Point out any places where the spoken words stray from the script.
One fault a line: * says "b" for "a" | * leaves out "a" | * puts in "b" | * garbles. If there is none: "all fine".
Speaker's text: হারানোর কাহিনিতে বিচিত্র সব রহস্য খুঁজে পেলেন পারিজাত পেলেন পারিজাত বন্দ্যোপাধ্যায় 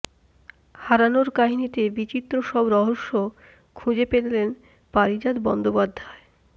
* leaves out "পেলেন পারিজাত"